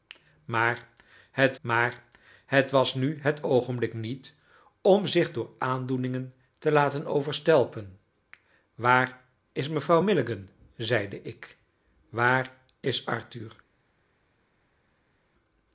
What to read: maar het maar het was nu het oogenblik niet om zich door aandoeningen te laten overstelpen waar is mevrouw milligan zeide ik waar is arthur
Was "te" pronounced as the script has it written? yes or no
yes